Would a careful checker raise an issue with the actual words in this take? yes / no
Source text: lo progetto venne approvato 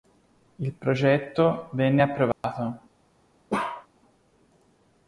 yes